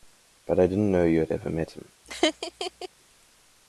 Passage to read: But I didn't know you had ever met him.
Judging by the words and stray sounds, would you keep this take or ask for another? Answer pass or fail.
fail